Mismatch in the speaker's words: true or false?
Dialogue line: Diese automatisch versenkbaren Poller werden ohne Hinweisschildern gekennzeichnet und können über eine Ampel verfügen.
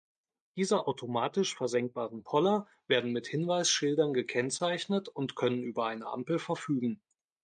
true